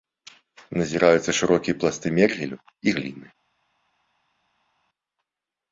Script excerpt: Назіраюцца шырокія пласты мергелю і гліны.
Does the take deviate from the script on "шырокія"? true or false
false